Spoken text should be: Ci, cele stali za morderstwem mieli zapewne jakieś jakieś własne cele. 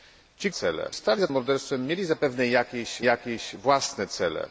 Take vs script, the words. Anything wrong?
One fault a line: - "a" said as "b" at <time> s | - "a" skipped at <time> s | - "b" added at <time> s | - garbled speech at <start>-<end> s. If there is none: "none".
none